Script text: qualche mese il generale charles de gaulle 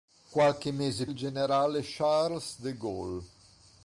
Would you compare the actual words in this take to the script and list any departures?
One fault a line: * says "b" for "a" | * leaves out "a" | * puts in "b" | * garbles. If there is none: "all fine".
all fine